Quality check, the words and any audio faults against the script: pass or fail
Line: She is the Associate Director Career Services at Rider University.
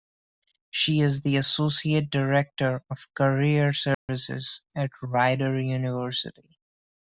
fail